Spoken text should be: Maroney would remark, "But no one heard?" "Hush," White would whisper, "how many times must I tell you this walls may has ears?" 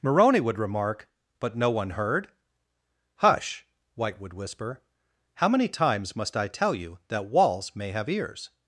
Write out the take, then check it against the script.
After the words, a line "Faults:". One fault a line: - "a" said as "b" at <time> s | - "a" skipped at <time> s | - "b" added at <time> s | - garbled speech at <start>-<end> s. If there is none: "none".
Maroney would remark, "But no one heard?" "Hush," White would whisper, "how many times must I tell you that walls may have ears?"
Faults:
- "this" said as "that" at 7.1 s
- "has" said as "have" at 7.9 s